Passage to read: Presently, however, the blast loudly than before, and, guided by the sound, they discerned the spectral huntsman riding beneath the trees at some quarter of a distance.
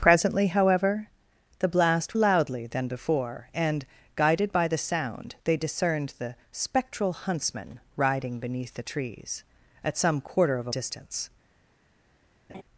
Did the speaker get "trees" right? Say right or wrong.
right